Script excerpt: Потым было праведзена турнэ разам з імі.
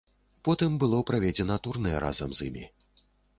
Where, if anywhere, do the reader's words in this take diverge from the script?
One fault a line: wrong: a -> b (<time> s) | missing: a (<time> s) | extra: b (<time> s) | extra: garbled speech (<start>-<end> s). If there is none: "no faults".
no faults